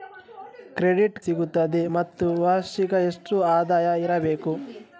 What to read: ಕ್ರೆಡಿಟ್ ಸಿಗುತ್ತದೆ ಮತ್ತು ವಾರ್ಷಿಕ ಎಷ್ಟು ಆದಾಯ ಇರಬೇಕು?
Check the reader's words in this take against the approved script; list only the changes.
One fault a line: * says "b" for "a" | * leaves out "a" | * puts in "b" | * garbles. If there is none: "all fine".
all fine